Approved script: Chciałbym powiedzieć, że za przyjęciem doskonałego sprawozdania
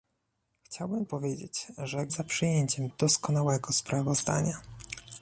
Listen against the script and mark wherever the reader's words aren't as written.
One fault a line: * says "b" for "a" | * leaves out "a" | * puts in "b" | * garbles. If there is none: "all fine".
all fine